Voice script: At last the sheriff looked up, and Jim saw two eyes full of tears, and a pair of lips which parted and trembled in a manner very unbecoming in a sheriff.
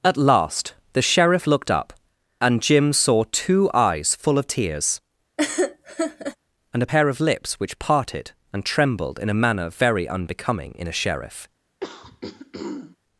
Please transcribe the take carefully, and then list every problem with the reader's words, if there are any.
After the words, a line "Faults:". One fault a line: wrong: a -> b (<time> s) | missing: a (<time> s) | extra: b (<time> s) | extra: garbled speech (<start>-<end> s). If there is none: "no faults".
At last the sheriff looked up, and Jim saw two eyes full of tears, and a pair of lips which parted and trembled in a manner very unbecoming in a sheriff.
Faults:
no faults